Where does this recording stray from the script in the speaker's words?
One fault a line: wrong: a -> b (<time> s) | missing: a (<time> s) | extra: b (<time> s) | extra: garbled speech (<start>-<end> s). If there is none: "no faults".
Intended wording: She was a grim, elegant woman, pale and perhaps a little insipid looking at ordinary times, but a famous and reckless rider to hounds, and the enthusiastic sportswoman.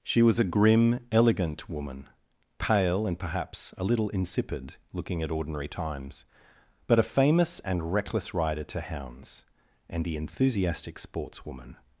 no faults